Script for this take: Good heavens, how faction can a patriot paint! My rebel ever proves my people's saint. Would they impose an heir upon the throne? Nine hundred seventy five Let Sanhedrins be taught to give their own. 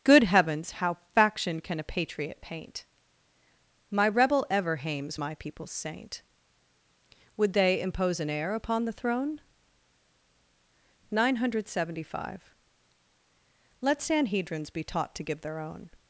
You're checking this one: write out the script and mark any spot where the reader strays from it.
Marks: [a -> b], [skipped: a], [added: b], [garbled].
Good heavens, how faction can a patriot paint! My rebel ever [proves -> hames] my people's saint. Would they impose an heir upon the throne? Nine hundred seventy five Let Sanhedrins be taught to give their own.